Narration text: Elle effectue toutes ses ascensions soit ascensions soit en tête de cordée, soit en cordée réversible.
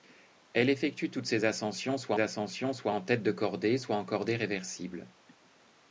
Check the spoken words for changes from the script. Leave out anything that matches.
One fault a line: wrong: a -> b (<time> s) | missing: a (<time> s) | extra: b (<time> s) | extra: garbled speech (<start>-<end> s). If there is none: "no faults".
no faults